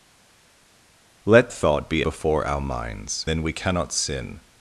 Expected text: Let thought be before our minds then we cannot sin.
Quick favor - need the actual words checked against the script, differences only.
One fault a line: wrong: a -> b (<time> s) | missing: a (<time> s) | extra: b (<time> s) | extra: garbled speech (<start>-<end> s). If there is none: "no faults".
no faults